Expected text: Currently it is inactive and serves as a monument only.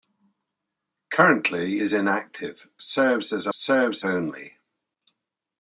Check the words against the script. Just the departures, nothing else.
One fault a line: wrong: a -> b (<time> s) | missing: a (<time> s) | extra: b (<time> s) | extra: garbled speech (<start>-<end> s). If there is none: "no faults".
missing: it (1.8 s)
missing: and (2.7 s)
wrong: monument -> serves (3.5 s)